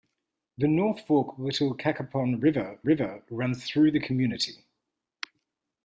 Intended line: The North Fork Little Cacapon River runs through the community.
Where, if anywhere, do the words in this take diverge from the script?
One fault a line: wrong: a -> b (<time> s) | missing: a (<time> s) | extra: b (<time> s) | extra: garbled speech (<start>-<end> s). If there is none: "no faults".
extra: River (2.8 s)